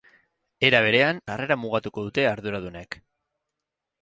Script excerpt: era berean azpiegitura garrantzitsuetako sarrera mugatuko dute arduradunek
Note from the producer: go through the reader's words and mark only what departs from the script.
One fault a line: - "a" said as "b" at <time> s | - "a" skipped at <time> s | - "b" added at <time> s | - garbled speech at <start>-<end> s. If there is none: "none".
- "azpiegitura garrantzitsuetako" skipped at 1.2 s